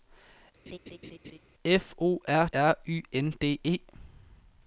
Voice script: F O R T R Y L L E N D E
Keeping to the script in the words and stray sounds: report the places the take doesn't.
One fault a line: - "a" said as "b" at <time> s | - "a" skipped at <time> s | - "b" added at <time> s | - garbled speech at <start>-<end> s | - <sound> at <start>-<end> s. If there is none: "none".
- laugh at 0.7-1.4 s
- "T" skipped at 2.5 s
- "L L E" skipped at 3.0 s